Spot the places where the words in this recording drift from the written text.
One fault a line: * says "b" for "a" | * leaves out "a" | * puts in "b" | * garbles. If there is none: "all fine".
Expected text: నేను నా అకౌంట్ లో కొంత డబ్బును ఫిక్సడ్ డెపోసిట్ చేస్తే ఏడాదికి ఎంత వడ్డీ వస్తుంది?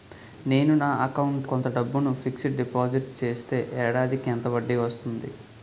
* leaves out "లో"